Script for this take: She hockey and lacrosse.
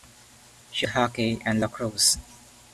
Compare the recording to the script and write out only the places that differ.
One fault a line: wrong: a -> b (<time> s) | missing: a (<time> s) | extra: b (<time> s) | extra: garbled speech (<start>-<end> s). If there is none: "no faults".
no faults